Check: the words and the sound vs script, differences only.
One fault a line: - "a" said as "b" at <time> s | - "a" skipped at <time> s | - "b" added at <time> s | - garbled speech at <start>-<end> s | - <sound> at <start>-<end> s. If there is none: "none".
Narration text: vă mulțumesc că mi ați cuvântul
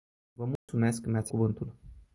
- dropout at 0.6-0.7 s